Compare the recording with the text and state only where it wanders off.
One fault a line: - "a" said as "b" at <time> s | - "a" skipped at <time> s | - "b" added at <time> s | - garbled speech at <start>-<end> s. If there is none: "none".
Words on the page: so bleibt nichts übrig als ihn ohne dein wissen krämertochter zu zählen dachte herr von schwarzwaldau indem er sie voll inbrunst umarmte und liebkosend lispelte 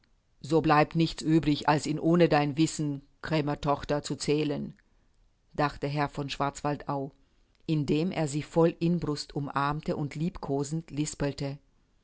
none